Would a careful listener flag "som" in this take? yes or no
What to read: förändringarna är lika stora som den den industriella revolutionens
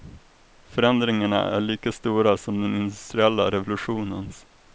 no